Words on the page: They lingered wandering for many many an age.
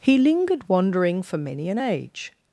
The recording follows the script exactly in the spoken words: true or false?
false